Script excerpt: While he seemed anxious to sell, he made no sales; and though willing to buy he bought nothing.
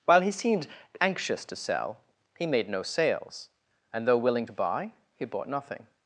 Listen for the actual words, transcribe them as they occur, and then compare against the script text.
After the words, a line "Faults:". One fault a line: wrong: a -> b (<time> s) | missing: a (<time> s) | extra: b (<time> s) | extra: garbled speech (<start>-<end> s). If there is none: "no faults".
While he seemed anxious to sell, he made no sales; and though willing to buy he bought nothing.
Faults:
no faults